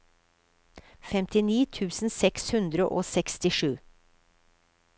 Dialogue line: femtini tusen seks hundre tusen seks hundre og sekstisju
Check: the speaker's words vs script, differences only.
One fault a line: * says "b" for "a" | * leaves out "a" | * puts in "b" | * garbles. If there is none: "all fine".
* leaves out "tusen seks hundre"